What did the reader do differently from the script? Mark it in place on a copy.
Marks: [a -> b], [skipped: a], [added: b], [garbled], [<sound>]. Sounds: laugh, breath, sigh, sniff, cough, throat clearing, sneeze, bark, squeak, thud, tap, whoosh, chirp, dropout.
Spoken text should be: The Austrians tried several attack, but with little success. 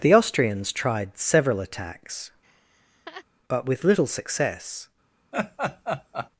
The Austrians tried several [attack, -> attacks] [laugh] but with little success. [laugh]